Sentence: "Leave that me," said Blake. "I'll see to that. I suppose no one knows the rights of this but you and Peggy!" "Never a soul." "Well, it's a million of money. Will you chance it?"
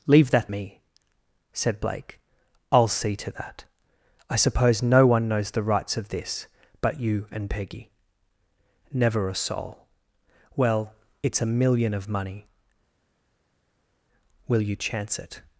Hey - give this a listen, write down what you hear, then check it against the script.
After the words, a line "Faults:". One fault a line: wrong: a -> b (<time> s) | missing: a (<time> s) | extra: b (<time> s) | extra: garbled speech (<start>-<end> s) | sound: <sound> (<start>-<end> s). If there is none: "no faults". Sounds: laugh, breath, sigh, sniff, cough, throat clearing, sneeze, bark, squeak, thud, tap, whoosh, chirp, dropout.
"Leave that me," said Blake. "I'll see to that. I suppose no one knows the rights of this but you and Peggy!" "Never a soul." "Well, it's a million of money. Will you chance it?"
Faults:
no faults